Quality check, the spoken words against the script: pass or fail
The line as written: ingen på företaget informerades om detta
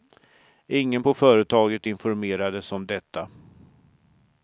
pass